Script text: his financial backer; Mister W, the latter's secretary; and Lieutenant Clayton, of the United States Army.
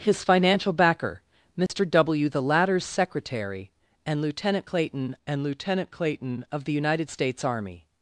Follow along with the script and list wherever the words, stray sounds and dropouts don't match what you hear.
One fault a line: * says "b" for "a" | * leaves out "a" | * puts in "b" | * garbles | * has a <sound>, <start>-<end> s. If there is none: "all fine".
* has a dropout, 1.7-1.7 s
* puts in "and Lieutenant Clayton"